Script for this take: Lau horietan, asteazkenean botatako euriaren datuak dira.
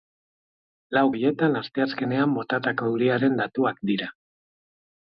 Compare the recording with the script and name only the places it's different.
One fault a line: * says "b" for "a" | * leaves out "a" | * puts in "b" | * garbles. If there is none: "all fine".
all fine